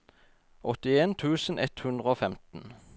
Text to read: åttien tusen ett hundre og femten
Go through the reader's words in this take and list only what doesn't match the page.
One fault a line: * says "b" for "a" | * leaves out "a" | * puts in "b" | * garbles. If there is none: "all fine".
all fine